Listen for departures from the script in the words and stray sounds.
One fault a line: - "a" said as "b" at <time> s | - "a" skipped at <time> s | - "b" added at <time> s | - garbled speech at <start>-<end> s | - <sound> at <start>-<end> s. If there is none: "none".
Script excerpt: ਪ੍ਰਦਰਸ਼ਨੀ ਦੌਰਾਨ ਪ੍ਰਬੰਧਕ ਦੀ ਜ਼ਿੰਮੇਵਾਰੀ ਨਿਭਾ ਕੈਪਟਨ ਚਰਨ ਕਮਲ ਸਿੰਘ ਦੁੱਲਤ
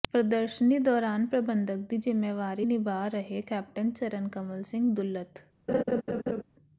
- "ਰਹੇ" added at 3.1 s
- laugh at 5.7-6.4 s